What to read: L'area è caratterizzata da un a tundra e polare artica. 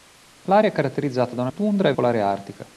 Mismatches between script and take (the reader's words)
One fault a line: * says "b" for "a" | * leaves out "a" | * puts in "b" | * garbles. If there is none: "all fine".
all fine